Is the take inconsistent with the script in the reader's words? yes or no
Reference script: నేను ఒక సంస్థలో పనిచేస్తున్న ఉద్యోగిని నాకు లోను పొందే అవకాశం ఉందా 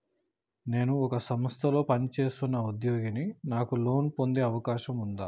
no